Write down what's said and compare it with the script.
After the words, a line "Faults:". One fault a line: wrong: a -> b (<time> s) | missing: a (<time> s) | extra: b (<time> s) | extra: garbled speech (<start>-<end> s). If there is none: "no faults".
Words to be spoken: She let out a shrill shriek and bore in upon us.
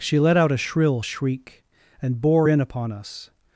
She let out a shrill shriek and bore in upon us.
Faults:
no faults